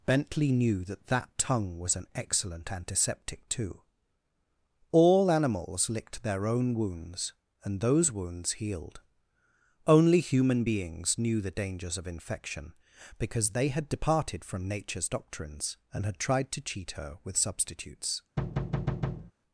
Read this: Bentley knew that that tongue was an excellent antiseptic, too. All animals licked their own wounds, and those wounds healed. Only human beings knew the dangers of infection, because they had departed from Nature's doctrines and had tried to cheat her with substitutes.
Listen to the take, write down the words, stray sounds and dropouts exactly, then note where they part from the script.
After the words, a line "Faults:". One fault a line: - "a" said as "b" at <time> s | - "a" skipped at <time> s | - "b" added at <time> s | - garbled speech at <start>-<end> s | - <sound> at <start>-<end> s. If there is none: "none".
Bentley knew that that tongue was an excellent antiseptic, too. All animals licked their own wounds, and those wounds healed. Only human beings knew the dangers of infection, because they had departed from Nature's doctrines and had tried to cheat her with substitutes.
Faults:
- thud at 18.4-19.3 s